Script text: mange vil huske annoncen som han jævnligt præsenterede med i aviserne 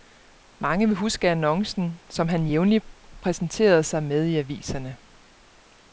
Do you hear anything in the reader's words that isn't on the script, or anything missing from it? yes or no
yes